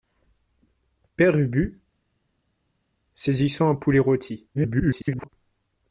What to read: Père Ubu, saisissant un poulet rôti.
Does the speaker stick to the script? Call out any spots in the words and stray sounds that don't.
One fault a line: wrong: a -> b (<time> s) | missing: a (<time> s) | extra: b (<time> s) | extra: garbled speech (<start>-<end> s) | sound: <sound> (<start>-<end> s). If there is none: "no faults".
extra: garbled speech (4.5-5.3 s)